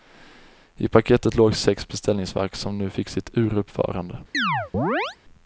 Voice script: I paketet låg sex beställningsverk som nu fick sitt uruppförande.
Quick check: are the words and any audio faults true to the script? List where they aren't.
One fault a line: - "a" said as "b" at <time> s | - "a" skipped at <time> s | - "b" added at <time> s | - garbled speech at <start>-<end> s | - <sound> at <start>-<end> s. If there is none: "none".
- chirp at 4.3-5.2 s